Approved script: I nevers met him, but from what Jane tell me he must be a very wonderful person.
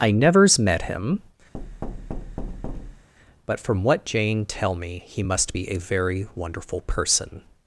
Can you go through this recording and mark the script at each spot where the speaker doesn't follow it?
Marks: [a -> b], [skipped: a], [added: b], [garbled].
I nevers met him, but from what Jane tell me he must be a very wonderful person.